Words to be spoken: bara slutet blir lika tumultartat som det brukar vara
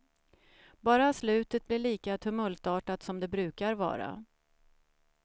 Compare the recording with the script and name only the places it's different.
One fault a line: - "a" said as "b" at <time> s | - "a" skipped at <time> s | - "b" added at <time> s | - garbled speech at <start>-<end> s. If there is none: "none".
none